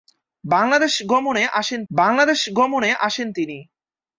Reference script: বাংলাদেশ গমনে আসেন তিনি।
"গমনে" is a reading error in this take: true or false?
false